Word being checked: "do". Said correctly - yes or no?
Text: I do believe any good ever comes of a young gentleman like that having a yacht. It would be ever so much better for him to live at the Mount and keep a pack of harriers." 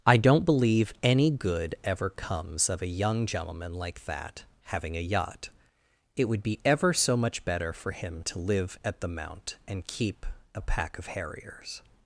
no